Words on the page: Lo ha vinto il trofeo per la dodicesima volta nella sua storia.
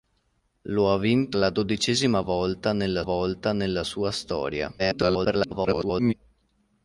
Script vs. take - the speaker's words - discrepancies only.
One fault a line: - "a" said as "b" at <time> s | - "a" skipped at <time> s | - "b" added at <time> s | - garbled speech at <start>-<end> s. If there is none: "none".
- "il trofeo per la dodicesima" said as "la dodicesima volta nella" at 1.4 s
- garbled speech at 4.8-6.1 s